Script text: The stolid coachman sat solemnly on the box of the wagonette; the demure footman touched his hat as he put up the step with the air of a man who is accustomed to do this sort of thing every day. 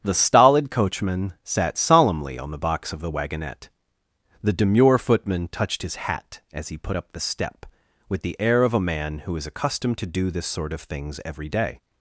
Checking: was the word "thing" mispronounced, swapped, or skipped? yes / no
yes